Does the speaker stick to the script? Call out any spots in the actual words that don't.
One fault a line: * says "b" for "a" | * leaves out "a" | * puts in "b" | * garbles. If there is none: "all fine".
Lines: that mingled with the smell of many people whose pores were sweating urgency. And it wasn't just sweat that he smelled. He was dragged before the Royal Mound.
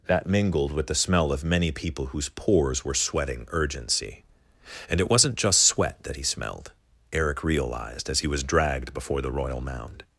* puts in "Eric realized as"